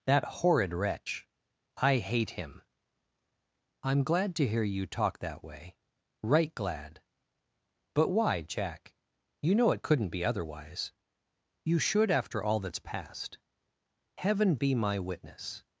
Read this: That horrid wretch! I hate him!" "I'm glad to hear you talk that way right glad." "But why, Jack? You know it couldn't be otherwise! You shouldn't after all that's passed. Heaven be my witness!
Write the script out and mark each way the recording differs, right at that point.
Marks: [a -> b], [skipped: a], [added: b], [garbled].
That horrid wretch! I hate him!" "I'm glad to hear you talk that way right glad." "But why, Jack? You know it couldn't be otherwise! You [shouldn't -> should] after all that's passed. Heaven be my witness!